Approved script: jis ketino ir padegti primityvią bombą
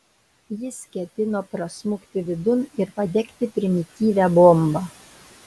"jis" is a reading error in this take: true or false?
false